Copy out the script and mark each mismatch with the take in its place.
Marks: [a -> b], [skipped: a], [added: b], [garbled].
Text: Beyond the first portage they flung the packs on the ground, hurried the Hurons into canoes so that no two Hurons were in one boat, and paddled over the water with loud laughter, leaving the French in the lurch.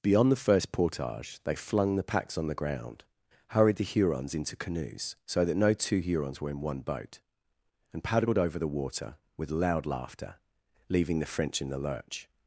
Beyond the first portage they flung the packs on the ground, hurried the Hurons into canoes so that no two Hurons were in one boat, and paddled over the water with loud laughter, leaving the French in the lurch.